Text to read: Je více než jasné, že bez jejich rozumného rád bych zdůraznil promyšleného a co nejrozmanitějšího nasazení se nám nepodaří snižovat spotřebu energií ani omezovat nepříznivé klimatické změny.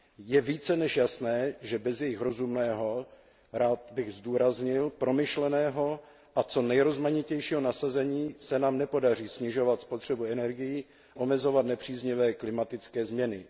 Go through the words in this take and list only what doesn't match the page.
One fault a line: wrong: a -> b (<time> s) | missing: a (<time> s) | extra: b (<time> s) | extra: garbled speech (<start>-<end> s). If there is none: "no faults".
missing: ani (10.8 s)